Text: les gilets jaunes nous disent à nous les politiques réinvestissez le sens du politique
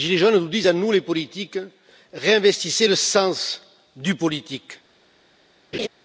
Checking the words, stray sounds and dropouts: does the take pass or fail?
fail